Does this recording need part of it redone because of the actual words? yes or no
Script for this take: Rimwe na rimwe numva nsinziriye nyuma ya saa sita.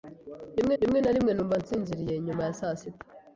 yes